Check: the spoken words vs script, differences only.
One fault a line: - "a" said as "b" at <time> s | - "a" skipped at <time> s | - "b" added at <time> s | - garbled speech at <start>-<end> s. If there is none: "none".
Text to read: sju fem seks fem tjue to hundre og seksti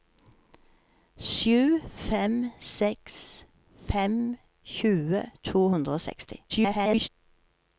- garbled speech at 6.5-7.1 s